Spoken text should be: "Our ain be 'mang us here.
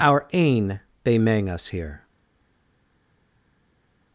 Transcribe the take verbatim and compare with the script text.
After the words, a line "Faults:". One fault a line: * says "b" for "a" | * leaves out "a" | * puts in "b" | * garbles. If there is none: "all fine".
"Our ain be 'mang us here.
Faults:
all fine